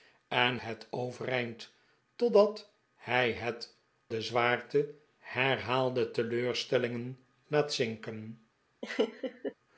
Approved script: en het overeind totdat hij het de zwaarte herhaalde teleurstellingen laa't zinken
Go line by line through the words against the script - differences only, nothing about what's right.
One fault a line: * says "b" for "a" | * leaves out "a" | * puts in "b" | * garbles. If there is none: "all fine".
all fine